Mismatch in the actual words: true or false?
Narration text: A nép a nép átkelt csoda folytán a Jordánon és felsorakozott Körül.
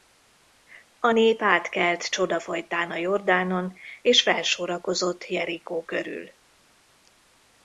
true